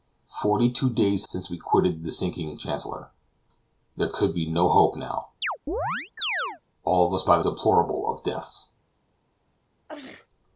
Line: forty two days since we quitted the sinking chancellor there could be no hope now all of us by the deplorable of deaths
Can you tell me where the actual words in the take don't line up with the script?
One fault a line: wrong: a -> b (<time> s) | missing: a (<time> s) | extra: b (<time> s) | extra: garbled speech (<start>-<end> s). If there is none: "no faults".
no faults